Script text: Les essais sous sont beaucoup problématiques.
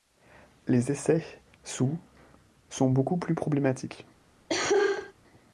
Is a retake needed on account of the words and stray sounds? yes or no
yes